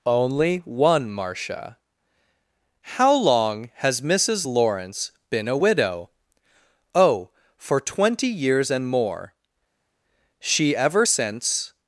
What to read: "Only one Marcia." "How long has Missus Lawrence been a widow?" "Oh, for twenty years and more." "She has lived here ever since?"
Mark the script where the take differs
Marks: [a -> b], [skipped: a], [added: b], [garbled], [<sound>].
"Only one Marcia." "How long has Missus Lawrence been a widow?" "Oh, for twenty years and more." "She [skipped: has lived here] ever since?"